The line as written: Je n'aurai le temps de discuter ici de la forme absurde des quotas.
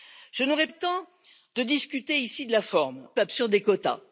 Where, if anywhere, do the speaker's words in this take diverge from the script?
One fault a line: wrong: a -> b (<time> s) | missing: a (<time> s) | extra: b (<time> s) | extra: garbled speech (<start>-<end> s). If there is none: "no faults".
no faults